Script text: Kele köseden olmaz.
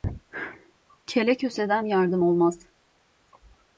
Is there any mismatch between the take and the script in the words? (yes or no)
yes